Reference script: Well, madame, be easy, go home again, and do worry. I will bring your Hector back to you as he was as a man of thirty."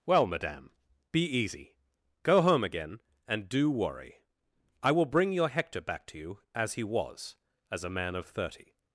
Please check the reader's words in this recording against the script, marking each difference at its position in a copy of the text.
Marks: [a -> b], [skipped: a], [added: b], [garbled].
Well, madame, be easy, go home again, and do worry. I will bring your Hector back to you as he was as a man of thirty."